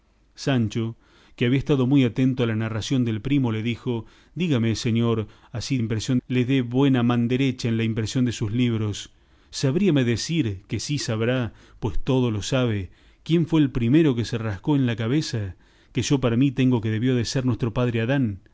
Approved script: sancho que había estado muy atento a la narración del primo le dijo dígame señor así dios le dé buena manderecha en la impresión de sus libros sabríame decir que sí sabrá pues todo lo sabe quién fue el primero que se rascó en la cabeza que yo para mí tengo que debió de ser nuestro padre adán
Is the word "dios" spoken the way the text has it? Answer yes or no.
no